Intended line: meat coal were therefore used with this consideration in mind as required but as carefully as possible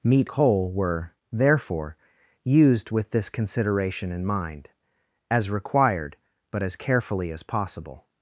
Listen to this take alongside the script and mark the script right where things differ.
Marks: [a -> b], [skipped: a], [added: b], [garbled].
meat coal were therefore used with this consideration in mind as required but as carefully as possible